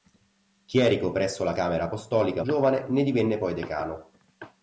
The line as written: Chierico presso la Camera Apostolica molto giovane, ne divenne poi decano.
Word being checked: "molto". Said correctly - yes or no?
no